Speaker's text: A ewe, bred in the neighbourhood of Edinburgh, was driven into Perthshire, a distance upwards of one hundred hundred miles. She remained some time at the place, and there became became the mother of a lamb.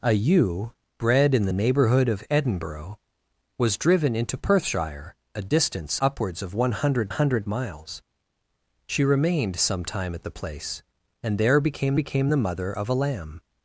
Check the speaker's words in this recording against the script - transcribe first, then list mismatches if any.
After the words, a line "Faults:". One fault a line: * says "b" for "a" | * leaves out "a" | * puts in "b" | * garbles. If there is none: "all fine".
A ewe, bred in the neighbourhood of Edinburgh, was driven into Perthshire, a distance upwards of one hundred hundred miles. She remained some time at the place, and there became became the mother of a lamb.
Faults:
all fine